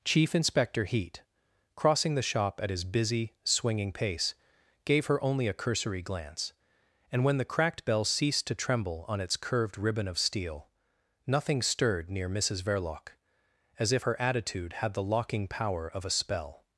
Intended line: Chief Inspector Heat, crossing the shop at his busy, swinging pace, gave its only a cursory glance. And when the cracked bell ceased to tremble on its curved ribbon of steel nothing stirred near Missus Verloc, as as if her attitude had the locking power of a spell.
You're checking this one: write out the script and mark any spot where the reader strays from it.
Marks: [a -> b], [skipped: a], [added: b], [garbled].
Chief Inspector Heat, crossing the shop at his busy, swinging pace, gave [its -> her] only a cursory glance. And when the cracked bell ceased to tremble on its curved ribbon of steel nothing stirred near Missus Verloc, as [skipped: as] if her attitude had the locking power of a spell.